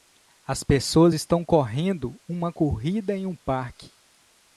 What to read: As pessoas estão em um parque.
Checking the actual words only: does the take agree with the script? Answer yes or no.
no